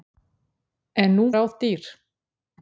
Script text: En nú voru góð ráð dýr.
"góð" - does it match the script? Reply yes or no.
no